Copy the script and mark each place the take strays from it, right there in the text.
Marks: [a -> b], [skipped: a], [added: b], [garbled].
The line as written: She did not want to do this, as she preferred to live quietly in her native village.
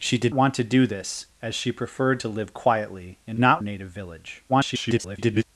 She did [skipped: not] want to do this, as she preferred to live quietly in [her -> not] native village. [garbled]